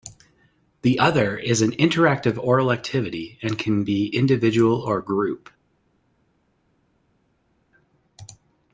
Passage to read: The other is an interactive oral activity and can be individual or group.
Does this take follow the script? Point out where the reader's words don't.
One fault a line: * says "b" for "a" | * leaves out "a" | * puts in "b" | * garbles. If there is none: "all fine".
all fine